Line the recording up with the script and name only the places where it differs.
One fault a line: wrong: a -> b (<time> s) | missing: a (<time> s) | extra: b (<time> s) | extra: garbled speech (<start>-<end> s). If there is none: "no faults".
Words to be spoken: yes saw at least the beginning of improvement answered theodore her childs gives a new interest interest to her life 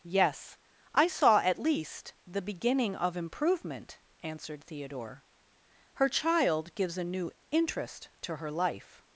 extra: i (0.9 s)
wrong: childs -> child (6.1 s)
missing: interest (8.1 s)